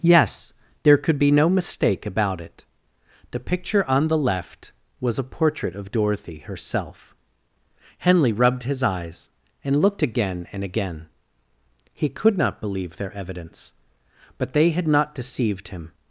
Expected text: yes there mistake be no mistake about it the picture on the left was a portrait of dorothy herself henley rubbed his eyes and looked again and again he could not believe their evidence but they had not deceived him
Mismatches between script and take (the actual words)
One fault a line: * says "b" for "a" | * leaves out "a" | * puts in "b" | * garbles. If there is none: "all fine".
* says "could" for "mistake"